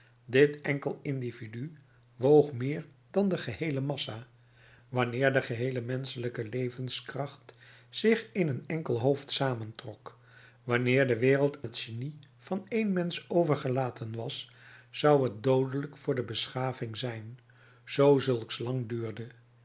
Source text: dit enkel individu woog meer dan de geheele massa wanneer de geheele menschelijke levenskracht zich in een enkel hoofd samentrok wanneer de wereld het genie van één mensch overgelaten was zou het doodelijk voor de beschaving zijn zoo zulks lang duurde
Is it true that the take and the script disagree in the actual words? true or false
false